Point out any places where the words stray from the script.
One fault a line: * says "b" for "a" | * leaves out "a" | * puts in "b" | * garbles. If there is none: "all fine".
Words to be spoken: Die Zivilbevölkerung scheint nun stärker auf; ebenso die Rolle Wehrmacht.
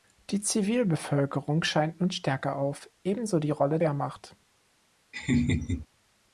all fine